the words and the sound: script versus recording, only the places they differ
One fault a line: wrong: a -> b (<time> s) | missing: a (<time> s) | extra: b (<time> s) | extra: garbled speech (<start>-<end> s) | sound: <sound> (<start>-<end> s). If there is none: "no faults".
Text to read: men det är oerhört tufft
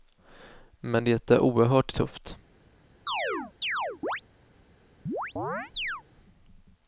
sound: chirp (3.1-4.2 s)
sound: chirp (5.1-6.0 s)